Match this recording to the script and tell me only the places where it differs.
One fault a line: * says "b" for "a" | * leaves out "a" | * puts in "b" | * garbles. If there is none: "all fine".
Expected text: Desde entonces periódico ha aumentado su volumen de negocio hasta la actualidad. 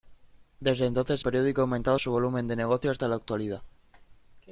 all fine